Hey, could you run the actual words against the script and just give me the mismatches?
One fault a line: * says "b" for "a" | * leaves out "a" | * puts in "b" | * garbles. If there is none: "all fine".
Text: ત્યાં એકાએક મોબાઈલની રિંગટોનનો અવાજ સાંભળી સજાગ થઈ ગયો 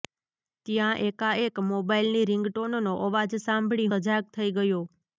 all fine